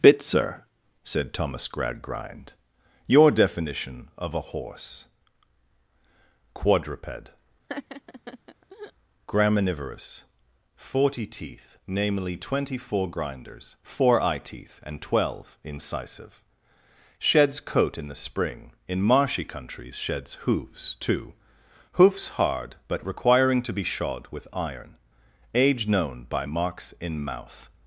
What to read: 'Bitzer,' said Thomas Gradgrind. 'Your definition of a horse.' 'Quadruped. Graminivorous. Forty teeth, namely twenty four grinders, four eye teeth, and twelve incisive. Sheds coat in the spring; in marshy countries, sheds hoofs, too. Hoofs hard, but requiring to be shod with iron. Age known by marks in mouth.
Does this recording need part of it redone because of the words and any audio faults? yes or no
yes